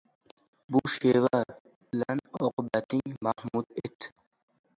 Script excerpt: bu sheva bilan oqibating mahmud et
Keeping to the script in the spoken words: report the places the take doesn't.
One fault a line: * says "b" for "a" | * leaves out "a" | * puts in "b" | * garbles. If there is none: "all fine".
all fine